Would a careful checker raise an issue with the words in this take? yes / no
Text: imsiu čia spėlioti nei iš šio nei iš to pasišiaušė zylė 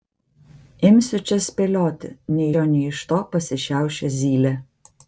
yes